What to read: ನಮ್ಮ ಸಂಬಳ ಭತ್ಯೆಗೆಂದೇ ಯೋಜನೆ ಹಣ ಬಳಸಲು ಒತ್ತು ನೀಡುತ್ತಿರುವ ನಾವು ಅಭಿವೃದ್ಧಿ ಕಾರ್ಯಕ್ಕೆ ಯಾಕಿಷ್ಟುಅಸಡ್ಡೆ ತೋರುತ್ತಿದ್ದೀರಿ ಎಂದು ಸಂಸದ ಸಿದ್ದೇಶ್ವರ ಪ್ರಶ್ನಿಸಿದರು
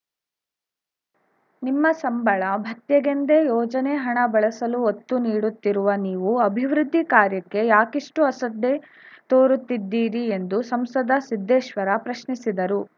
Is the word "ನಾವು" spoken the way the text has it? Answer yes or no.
no